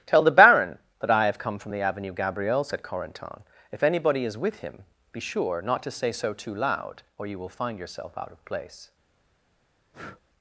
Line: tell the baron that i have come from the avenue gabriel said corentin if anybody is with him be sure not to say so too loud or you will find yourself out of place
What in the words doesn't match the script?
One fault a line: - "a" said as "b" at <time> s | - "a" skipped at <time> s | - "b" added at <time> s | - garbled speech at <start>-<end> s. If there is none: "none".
none